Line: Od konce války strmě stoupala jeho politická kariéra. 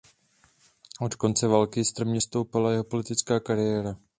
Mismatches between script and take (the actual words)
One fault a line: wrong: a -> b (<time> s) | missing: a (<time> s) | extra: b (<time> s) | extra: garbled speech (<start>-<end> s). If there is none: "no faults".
no faults